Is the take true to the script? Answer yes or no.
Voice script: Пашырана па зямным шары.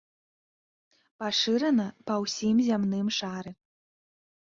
no